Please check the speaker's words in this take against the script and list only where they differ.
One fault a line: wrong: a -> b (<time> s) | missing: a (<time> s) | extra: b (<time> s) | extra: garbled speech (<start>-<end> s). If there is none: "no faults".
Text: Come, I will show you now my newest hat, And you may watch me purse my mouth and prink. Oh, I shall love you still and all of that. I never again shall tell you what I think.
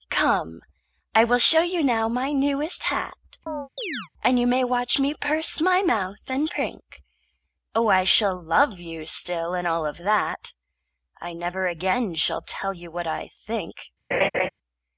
no faults